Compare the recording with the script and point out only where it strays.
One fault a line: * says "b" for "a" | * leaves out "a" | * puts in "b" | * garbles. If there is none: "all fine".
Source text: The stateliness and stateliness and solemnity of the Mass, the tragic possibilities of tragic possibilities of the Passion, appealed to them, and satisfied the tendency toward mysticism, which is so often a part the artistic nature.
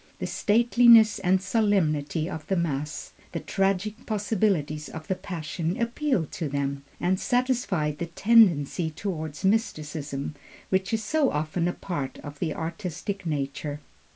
* leaves out "stateliness and"
* leaves out "tragic possibilities of"
* puts in "of"